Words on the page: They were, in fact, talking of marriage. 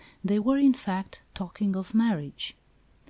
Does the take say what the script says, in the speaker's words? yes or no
yes